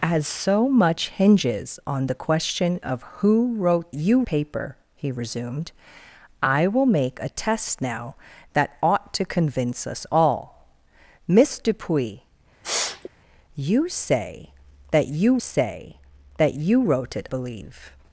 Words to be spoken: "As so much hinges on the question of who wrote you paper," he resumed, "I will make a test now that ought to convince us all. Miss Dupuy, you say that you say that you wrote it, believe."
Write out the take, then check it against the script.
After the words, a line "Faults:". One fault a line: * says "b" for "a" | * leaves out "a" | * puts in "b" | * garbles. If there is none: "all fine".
"As so much hinges on the question of who wrote you paper," he resumed, "I will make a test now that ought to convince us all. Miss Dupuy, you say that you say that you wrote it, believe."
Faults:
all fine